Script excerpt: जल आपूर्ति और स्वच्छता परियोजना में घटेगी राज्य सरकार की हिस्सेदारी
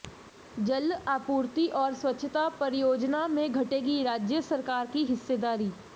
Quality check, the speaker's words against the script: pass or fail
pass